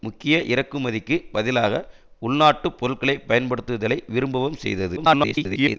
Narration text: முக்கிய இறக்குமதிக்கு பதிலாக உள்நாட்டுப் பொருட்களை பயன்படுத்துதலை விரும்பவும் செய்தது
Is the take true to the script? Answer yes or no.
no